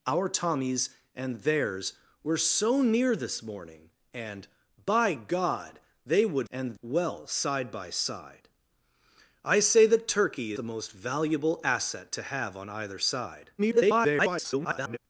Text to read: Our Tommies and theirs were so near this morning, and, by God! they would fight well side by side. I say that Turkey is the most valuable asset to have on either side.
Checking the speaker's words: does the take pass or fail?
fail